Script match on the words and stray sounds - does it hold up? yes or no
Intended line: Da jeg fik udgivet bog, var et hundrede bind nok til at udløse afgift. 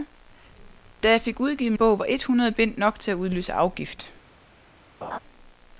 no